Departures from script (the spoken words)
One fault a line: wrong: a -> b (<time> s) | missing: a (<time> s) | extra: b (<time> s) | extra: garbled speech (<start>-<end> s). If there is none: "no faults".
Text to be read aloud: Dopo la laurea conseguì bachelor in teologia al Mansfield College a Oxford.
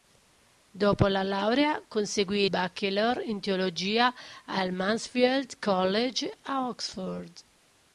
no faults